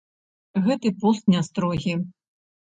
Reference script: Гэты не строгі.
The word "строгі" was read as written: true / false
true